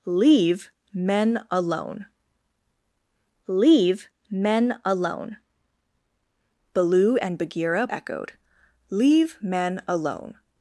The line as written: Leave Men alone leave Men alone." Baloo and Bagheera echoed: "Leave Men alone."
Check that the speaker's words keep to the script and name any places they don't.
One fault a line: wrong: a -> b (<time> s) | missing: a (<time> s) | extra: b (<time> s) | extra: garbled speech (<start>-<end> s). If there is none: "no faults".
no faults